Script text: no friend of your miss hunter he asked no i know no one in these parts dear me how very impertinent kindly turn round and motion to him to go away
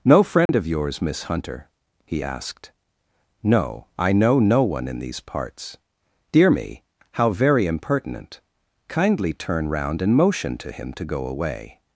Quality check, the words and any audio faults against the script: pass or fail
fail